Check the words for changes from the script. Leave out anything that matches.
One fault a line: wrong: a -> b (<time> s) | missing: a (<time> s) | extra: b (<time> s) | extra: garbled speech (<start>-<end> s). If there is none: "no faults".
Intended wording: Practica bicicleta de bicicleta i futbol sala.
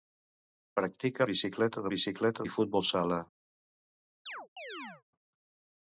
no faults